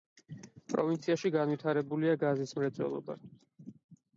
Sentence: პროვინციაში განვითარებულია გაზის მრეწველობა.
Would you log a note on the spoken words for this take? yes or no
no